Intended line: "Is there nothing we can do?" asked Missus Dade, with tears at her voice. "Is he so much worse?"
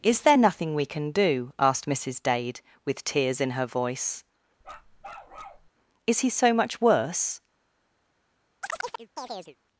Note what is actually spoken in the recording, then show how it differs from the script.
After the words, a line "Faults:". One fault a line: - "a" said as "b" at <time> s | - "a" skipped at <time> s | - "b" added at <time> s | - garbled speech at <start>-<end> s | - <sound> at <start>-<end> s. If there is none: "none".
"Is there nothing we can do?" asked Missus Dade, with tears in her voice. "Is he so much worse?"
Faults:
- "at" said as "in" at 3.4 s
- bark at 4.6-5.7 s
- chirp at 8.6-9.6 s